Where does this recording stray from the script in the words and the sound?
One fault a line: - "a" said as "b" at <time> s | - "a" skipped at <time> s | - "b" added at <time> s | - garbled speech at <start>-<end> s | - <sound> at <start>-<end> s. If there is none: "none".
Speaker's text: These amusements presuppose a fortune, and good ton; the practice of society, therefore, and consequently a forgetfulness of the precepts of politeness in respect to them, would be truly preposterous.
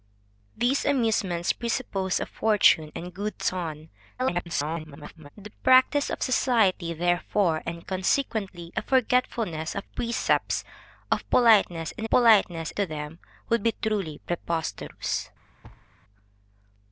- garbled speech at 4.2-5.3 s
- "the" skipped at 9.8 s
- "respect" said as "politeness" at 12.1 s
- thud at 15.6-15.9 s